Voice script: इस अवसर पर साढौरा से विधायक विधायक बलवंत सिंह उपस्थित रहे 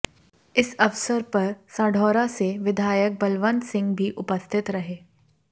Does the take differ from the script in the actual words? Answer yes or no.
yes